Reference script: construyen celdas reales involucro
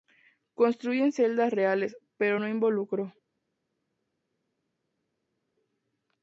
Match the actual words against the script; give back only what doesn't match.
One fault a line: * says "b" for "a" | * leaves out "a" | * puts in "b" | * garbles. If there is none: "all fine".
* puts in "pero no"